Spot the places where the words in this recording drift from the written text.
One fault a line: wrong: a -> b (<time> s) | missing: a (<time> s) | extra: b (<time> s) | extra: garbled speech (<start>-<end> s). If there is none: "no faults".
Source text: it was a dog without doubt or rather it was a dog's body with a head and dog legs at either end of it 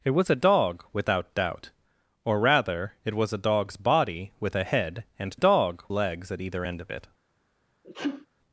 no faults